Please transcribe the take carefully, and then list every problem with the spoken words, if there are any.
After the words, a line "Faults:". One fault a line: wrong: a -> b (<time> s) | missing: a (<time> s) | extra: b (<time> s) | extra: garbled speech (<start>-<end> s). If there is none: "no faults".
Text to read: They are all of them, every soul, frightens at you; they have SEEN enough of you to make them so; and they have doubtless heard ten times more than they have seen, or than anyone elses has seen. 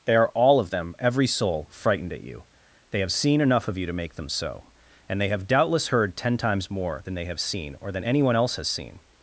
They are all of them, every soul, frightened at you; they have SEEN enough of you to make them so; and they have doubtless heard ten times more than they have seen, or than anyone else has seen.
Faults:
wrong: frightens -> frightened (1.7 s)
wrong: elses -> else (8.3 s)